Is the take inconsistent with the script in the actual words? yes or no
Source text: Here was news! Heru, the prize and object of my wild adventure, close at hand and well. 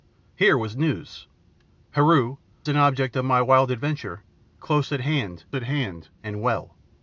yes